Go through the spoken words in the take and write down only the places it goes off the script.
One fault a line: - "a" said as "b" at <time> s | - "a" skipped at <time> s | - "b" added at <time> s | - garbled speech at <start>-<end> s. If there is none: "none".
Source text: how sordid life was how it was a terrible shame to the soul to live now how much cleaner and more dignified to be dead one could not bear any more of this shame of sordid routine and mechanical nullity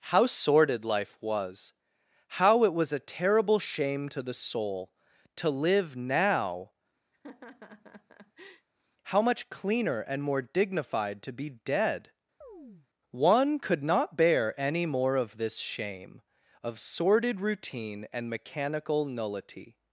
none